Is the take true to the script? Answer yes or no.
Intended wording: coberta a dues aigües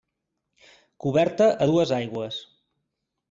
yes